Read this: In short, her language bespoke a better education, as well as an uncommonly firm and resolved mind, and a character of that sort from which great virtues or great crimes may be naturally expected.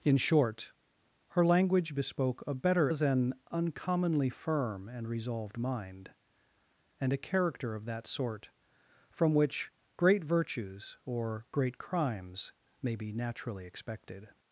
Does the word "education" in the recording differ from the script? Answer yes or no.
yes